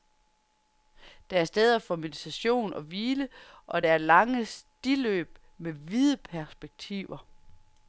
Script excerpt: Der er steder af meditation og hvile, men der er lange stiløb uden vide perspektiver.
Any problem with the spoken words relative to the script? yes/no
yes